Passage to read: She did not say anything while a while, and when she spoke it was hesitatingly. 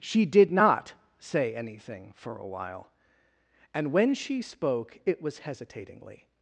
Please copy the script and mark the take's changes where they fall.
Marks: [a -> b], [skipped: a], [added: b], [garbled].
She did not say anything [while -> for] a while, and when she spoke it was hesitatingly.